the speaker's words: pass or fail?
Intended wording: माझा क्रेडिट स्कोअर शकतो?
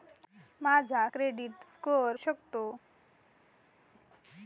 pass